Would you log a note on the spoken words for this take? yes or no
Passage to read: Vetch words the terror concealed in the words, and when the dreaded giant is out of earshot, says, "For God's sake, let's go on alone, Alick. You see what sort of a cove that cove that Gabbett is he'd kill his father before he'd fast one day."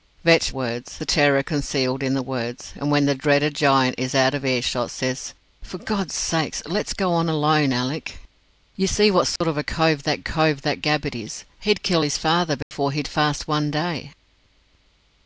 no